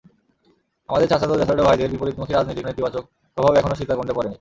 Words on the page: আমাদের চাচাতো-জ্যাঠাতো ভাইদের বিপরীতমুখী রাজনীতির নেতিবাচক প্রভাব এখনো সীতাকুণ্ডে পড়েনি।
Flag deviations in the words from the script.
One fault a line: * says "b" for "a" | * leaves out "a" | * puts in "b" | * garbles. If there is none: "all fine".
all fine